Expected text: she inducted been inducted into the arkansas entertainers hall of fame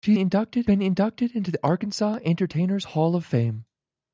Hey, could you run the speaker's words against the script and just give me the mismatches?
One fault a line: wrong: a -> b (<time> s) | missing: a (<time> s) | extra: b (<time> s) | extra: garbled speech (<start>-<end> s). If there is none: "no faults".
no faults